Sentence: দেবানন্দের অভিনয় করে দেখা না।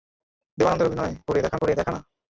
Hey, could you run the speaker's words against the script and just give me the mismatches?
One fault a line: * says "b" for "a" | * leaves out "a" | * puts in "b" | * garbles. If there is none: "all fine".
* puts in "করে দেখা"